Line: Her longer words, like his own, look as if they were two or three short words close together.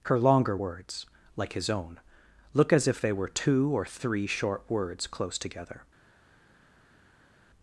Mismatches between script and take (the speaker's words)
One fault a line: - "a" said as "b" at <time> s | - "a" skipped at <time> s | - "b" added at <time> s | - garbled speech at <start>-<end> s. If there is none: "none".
none